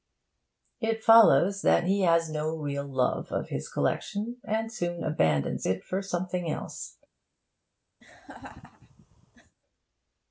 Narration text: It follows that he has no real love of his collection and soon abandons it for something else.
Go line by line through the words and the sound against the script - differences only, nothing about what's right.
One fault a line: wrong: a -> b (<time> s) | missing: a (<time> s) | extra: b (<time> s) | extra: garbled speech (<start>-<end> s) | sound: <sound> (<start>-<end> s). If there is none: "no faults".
sound: laugh (8.0-9.6 s)